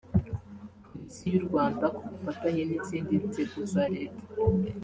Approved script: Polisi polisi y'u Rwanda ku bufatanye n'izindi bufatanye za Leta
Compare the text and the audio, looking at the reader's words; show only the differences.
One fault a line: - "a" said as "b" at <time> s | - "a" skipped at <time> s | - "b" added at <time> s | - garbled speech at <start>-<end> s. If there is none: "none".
- "polisi" skipped at 1.2 s
- "bufatanye" said as "nzego" at 3.3 s